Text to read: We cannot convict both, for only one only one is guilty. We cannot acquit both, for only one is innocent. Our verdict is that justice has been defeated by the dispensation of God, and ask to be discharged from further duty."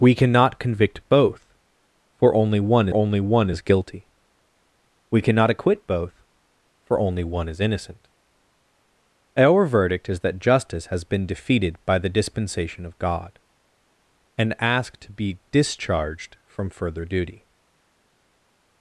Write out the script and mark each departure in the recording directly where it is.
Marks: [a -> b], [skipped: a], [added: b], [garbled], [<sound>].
We cannot convict both, for only one only one is guilty. We cannot acquit both, for only one is innocent. Our verdict is that justice has been defeated by the dispensation of God, and ask to be discharged from further duty."